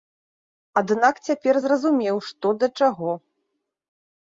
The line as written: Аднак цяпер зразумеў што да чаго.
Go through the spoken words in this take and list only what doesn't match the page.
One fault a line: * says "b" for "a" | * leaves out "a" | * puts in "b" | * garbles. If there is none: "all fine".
all fine